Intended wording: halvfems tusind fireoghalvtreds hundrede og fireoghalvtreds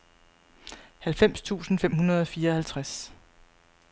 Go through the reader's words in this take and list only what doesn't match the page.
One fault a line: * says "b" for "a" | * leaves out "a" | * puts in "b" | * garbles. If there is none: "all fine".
* says "fem" for "fireoghalvtreds"